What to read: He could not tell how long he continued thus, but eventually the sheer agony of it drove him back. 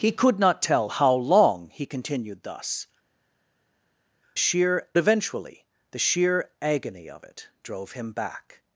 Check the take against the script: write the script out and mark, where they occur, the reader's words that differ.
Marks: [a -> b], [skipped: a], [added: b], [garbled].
He could not tell how long he continued thus, [but -> sheer] eventually the sheer agony of it drove him back.